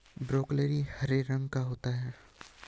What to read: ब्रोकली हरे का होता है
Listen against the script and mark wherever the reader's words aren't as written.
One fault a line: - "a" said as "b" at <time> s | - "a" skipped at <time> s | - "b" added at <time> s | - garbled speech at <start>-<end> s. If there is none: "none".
- "रंग" added at 1.2 s